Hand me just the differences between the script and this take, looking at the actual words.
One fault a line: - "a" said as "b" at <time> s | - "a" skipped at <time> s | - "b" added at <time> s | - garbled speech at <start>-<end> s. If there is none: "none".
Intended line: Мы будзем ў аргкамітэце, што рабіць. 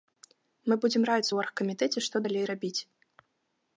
- "раіцца" added at 1.1 s
- "далей" added at 2.3 s